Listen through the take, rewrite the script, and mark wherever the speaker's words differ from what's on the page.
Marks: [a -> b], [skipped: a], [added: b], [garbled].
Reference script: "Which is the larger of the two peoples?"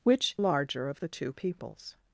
"Which [skipped: is the] larger of the two peoples?"